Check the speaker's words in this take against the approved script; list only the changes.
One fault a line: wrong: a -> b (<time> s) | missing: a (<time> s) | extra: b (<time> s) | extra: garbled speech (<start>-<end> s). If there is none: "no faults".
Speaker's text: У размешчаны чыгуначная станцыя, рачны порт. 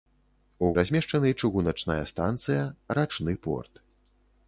no faults